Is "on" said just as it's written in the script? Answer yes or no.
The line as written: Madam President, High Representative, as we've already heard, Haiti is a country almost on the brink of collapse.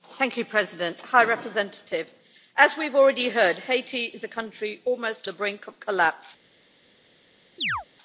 no